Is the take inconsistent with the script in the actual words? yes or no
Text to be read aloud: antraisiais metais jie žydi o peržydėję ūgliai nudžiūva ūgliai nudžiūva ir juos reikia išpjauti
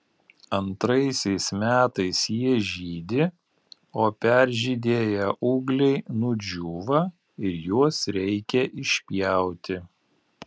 yes